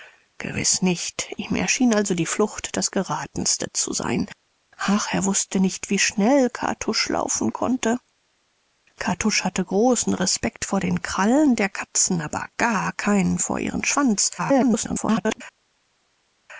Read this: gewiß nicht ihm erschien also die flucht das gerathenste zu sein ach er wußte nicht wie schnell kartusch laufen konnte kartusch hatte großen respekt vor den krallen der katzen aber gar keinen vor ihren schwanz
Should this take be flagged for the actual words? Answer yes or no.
yes